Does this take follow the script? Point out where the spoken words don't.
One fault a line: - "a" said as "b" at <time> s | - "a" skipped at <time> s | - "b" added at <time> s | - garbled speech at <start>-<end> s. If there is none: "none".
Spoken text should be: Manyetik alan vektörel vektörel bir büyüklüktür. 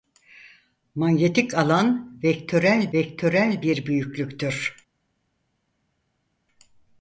none